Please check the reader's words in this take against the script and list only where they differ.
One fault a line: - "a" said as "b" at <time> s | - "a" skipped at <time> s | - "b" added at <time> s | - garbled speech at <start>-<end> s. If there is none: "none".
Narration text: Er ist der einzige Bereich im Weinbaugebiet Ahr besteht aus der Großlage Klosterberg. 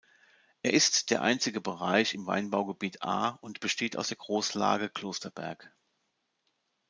- "und" added at 3.4 s